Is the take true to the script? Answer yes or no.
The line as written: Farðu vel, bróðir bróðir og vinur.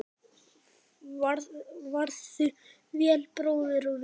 no